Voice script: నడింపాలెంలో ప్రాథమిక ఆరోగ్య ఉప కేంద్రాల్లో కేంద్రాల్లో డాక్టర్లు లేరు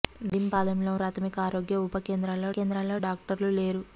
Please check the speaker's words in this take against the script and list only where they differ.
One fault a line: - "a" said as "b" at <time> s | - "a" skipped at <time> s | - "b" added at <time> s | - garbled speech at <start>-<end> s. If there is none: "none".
none